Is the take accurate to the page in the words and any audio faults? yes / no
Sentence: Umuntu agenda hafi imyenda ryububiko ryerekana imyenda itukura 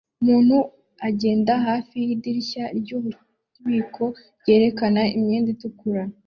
no